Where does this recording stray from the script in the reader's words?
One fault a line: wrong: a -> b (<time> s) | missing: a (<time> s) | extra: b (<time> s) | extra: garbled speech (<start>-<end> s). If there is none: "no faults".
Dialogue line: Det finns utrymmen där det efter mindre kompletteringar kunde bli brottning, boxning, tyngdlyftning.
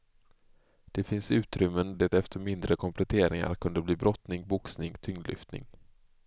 missing: där (1.9 s)